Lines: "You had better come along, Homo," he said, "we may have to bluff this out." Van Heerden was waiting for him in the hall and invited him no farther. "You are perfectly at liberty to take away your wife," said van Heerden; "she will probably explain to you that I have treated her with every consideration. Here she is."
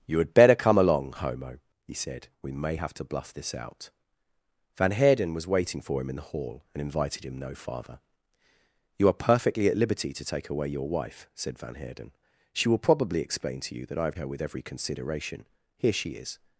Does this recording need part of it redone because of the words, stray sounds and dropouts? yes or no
yes